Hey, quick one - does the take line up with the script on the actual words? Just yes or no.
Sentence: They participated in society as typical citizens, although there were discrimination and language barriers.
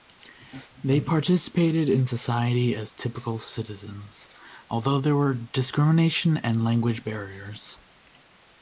yes